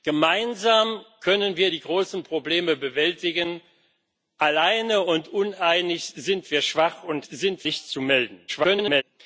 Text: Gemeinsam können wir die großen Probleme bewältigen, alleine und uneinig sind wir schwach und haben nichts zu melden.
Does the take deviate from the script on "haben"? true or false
true